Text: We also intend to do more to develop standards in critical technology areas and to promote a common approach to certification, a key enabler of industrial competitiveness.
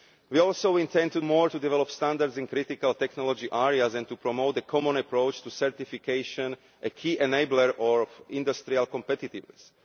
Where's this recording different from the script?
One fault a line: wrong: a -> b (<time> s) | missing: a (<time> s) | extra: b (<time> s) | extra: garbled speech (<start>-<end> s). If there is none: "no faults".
missing: do (1.2 s)